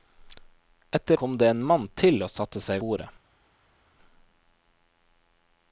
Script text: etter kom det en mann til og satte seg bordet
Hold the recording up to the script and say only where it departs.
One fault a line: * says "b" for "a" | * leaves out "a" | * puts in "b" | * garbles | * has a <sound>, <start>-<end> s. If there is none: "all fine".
all fine